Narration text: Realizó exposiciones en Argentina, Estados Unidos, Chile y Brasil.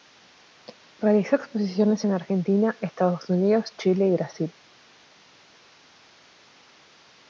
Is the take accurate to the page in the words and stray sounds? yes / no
yes